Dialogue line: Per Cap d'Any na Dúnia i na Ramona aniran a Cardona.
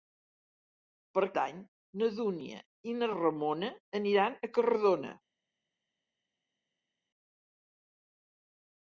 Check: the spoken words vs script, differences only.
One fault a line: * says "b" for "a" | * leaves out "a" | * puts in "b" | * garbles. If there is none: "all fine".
* leaves out "Cap"